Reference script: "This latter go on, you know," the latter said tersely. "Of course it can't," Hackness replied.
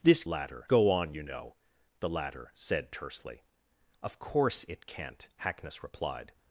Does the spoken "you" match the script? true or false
true